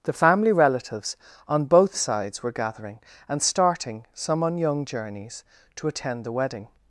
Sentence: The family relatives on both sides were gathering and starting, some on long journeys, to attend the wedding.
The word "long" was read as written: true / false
false